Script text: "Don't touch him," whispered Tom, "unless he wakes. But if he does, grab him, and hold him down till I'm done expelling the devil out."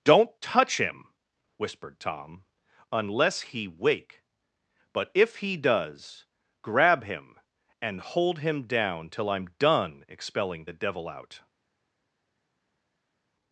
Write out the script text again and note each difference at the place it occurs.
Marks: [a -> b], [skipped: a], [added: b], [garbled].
"Don't touch him," whispered Tom, "unless he [wakes. -> wake] But if he does, grab him, and hold him down till I'm done expelling the devil out."